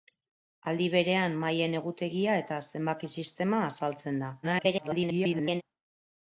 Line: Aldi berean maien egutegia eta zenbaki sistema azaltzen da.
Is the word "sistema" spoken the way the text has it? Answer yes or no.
yes